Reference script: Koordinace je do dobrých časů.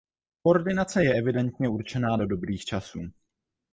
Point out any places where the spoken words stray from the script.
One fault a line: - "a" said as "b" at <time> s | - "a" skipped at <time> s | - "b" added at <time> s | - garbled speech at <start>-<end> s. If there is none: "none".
- "evidentně určená" added at 1.1 s